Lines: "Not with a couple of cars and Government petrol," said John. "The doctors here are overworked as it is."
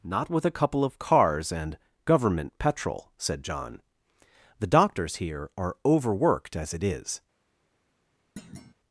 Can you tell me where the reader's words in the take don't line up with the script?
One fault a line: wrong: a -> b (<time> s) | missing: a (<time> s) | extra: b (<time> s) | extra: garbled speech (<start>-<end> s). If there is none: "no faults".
no faults